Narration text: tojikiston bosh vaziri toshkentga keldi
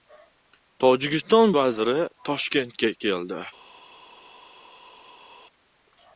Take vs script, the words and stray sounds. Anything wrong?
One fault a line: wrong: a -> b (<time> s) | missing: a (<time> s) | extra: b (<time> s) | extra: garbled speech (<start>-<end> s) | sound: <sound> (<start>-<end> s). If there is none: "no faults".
missing: bosh (1.5 s)